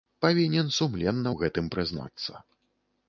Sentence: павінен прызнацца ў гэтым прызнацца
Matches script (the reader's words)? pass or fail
fail